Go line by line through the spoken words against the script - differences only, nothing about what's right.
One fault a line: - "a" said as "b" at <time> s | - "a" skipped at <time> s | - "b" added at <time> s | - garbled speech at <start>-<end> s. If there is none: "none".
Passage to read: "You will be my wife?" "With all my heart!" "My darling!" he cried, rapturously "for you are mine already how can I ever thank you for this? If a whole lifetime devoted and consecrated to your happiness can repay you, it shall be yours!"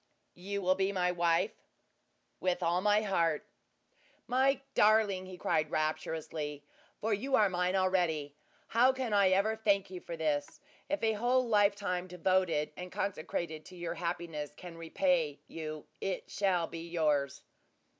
none